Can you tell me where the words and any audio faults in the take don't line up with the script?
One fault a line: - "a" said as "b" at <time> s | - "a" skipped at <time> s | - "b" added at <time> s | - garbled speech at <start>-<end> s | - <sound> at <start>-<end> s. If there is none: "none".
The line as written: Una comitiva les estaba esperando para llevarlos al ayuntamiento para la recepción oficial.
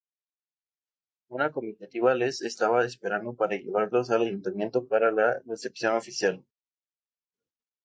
none